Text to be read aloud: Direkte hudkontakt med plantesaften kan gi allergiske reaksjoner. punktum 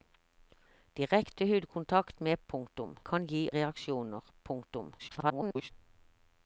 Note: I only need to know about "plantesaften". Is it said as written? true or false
false